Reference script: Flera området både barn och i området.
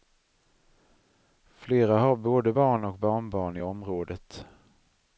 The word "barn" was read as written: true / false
true